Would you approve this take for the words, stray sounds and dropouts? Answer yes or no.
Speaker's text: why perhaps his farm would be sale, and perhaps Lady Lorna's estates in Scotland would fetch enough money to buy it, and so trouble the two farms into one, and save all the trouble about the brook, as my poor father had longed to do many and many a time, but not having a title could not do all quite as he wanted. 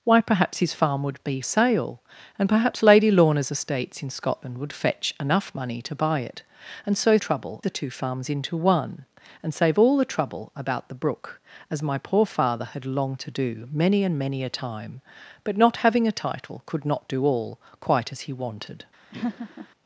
no